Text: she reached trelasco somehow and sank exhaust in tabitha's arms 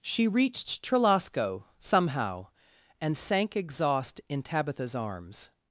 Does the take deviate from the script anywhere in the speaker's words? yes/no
no